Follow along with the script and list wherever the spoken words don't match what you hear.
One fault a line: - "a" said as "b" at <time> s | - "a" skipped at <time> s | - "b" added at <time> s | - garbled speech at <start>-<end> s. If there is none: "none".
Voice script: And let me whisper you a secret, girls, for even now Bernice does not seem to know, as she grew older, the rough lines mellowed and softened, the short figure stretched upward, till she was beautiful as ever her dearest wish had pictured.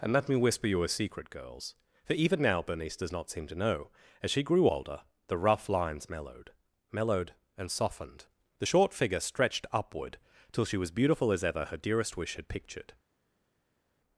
- "mellowed" added at 6.9 s